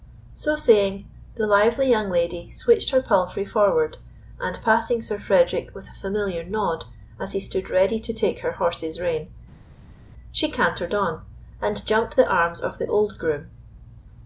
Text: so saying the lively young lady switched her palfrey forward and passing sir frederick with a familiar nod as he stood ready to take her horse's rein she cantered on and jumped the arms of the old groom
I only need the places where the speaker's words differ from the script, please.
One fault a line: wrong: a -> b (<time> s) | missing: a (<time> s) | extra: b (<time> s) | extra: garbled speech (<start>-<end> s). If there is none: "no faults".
no faults